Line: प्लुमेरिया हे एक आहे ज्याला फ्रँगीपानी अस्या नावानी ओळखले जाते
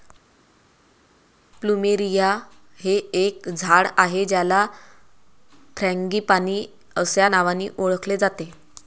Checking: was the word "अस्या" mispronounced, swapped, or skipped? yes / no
no